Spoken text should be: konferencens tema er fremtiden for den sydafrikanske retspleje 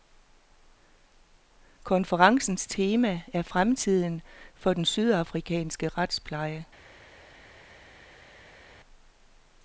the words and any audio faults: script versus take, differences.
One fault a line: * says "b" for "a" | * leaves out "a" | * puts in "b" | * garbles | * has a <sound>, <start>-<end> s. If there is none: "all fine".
all fine